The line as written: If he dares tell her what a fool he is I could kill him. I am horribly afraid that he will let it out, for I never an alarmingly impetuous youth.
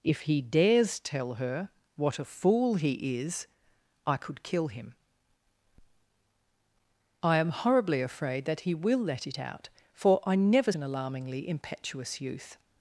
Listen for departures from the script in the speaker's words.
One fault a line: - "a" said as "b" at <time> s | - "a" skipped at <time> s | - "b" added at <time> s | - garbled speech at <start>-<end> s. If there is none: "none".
none